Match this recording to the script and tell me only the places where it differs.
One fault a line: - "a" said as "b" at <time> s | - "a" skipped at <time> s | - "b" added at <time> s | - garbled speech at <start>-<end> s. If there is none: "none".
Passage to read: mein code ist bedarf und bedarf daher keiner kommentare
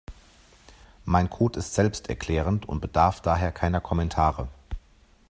- "bedarf" said as "selbsterklärend" at 1.8 s